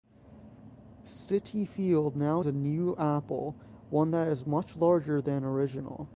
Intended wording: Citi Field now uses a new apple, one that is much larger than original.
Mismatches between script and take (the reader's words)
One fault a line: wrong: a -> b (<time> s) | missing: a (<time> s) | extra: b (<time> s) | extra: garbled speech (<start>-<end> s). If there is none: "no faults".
missing: uses (2.4 s)